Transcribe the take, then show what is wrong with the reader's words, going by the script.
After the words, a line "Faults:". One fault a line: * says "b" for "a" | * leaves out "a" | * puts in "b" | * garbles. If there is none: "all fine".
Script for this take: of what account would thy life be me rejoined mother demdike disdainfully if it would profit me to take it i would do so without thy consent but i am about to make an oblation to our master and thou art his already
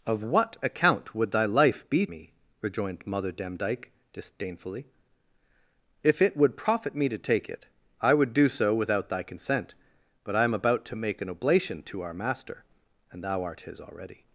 of what account would thy life be me rejoined mother demdike disdainfully if it would profit me to take it i would do so without thy consent but i am about to make an oblation to our master and thou art his already
Faults:
all fine